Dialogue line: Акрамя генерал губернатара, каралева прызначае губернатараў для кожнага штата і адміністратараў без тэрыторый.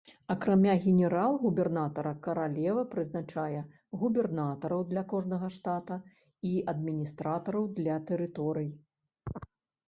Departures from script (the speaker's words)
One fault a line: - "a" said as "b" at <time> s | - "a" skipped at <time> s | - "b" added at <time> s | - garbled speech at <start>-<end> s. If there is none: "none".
- "без" said as "для" at 7.8 s